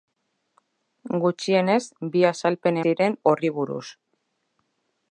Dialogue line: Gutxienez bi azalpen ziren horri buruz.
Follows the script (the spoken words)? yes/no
yes